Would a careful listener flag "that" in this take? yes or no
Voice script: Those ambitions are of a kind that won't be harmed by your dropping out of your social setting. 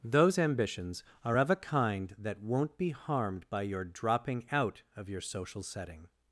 no